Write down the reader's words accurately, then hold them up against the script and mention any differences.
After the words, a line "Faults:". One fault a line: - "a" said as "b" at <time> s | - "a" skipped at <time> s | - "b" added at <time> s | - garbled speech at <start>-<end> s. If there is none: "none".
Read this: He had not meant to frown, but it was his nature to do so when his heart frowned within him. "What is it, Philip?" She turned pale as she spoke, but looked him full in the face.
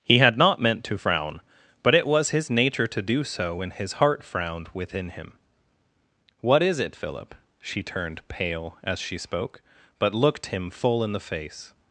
He had not meant to frown, but it was his nature to do so when his heart frowned within him. "What is it, Philip?" She turned pale as she spoke, but looked him full in the face.
Faults:
none